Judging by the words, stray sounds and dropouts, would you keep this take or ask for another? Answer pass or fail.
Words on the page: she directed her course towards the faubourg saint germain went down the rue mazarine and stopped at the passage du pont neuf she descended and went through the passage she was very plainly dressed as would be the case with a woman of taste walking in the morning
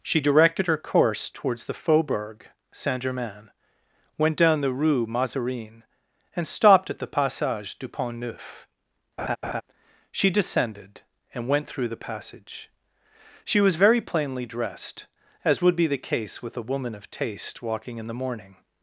fail